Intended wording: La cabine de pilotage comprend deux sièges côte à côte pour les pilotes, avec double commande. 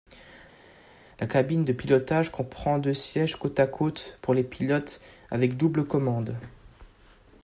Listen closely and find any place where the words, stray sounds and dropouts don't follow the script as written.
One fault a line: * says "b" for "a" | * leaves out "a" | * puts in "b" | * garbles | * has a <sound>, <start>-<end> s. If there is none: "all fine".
all fine